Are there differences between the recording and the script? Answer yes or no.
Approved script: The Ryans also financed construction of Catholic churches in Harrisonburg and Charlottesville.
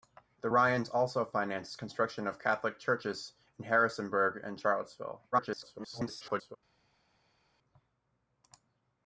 yes